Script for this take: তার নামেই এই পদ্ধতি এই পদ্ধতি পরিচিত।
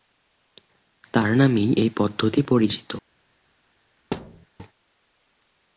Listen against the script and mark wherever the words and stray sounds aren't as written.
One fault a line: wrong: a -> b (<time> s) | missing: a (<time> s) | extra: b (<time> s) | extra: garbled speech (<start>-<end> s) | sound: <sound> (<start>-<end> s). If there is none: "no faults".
missing: এই পদ্ধতি (2.4 s)
sound: thud (4.1-4.5 s)